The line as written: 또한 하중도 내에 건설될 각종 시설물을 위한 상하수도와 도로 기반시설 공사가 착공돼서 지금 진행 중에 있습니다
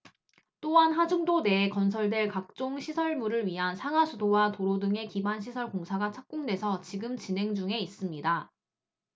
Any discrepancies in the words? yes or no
yes